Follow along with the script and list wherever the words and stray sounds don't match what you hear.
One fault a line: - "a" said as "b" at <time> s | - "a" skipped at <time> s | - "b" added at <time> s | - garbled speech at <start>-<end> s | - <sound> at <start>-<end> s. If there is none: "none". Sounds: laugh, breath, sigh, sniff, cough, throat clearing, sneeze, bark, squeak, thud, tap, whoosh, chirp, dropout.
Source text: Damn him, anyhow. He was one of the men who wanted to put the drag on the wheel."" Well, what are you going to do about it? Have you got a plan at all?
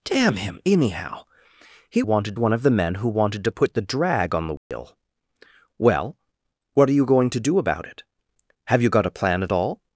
- "was" said as "wanted" at 2.0 s
- dropout at 4.6-4.7 s